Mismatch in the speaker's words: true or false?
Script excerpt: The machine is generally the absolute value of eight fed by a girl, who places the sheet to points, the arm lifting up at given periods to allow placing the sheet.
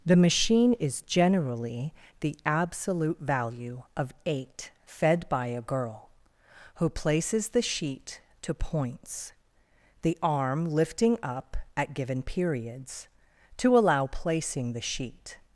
false